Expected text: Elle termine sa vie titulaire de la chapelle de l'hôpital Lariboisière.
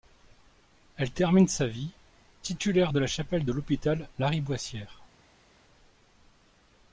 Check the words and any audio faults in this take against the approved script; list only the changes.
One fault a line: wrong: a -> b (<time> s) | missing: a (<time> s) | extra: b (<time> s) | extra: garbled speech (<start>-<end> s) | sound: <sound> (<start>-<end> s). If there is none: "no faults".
no faults